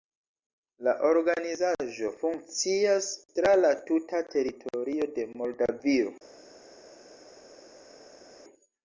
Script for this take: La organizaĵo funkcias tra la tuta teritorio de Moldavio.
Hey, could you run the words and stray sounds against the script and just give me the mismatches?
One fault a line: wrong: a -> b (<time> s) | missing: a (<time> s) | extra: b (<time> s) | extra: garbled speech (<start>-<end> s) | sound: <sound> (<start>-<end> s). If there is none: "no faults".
no faults